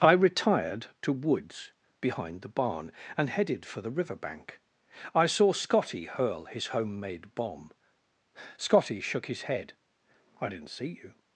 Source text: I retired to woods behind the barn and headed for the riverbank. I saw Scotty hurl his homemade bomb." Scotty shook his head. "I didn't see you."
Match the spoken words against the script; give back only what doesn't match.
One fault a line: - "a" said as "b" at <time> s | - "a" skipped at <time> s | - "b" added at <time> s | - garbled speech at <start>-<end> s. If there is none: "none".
none